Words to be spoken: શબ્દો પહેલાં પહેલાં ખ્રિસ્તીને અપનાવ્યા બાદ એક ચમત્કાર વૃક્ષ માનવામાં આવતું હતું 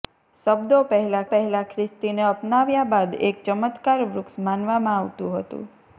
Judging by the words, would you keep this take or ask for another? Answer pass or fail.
pass